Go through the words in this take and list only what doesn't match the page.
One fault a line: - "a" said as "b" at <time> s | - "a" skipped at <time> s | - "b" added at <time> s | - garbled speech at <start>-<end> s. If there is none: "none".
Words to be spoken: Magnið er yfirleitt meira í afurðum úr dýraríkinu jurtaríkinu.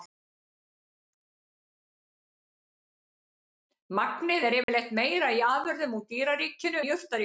none